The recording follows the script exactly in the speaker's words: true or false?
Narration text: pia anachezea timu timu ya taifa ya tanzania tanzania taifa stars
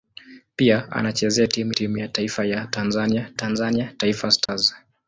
true